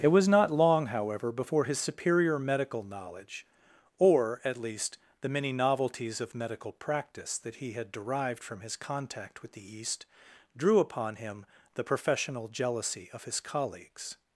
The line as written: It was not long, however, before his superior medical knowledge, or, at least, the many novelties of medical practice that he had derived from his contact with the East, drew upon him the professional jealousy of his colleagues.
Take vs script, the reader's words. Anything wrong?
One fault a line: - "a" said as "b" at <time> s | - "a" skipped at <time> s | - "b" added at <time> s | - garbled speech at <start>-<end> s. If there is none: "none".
none